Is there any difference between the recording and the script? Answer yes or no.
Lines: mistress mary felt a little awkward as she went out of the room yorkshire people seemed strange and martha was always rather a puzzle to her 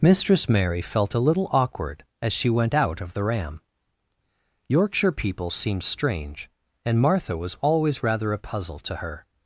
yes